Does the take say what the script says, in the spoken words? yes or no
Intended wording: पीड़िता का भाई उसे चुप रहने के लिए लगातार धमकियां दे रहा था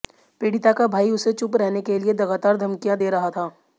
yes